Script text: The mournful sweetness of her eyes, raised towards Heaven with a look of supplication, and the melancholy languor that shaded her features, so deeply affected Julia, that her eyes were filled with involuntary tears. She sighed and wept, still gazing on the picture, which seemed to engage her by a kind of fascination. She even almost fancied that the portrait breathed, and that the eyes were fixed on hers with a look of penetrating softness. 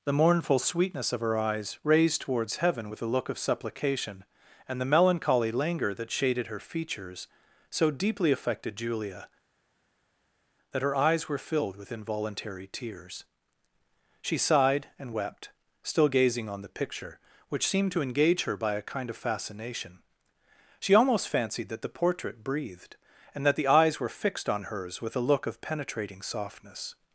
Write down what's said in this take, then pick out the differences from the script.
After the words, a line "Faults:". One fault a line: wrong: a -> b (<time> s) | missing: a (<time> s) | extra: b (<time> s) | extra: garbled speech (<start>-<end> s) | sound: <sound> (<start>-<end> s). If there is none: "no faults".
The mournful sweetness of her eyes, raised towards Heaven with a look of supplication, and the melancholy languor that shaded her features, so deeply affected Julia, that her eyes were filled with involuntary tears. She sighed and wept, still gazing on the picture, which seemed to engage her by a kind of fascination. She almost fancied that the portrait breathed, and that the eyes were fixed on hers with a look of penetrating softness.
Faults:
missing: even (20.9 s)